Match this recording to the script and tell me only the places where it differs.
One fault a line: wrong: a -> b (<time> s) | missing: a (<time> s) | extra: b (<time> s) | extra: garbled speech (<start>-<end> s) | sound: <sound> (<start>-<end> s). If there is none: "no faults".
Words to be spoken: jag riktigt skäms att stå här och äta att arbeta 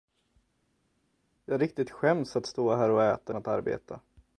no faults